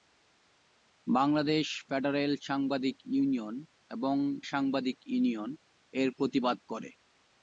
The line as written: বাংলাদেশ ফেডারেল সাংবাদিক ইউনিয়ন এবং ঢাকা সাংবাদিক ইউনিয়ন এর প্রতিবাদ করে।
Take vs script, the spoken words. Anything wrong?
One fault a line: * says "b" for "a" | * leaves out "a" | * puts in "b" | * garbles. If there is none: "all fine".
* leaves out "ঢাকা"